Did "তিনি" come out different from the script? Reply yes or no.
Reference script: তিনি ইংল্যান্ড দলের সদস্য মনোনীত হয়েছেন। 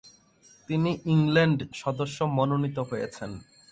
no